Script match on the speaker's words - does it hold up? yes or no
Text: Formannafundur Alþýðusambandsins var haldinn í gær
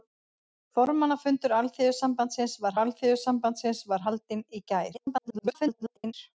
no